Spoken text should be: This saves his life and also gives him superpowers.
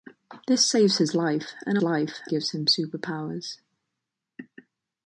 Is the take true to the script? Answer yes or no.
no